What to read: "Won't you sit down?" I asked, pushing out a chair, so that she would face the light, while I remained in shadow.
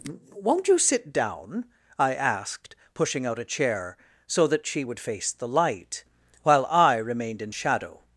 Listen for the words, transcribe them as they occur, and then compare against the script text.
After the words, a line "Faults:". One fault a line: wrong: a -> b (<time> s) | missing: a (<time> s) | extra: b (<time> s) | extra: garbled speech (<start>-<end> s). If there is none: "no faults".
"Won't you sit down?" I asked, pushing out a chair, so that she would face the light, while I remained in shadow.
Faults:
no faults